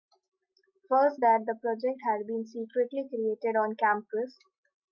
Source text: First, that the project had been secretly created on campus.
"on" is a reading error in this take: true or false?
false